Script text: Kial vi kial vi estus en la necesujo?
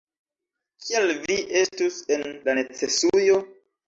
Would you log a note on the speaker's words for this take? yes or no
yes